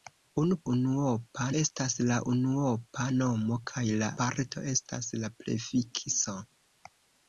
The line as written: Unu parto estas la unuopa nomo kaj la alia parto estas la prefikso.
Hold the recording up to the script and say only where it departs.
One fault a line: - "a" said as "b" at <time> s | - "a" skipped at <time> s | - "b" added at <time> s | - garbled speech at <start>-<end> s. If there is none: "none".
- "parto" said as "unuopa" at 0.7 s
- "alia" skipped at 4.1 s